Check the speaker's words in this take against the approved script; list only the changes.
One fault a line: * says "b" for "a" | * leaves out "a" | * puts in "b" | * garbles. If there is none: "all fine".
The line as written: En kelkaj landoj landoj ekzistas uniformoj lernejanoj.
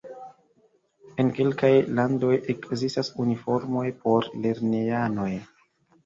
* leaves out "landoj"
* puts in "por"